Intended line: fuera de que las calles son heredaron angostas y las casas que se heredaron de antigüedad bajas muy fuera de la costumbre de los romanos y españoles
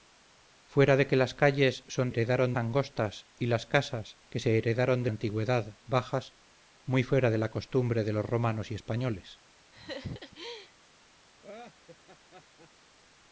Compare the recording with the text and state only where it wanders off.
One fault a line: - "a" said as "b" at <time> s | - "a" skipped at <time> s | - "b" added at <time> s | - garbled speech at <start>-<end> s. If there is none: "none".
none